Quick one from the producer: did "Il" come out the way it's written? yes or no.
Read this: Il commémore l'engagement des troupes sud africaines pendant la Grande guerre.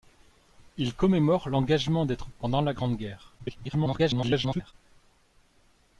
yes